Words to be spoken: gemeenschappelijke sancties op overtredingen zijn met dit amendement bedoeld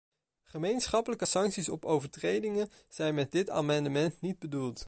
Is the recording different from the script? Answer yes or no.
yes